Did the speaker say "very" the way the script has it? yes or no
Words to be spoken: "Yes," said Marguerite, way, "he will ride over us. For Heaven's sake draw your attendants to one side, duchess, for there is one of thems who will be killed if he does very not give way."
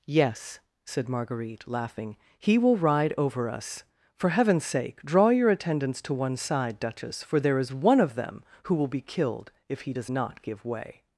no